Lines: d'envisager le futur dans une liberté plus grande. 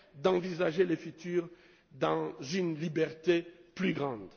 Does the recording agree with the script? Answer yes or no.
yes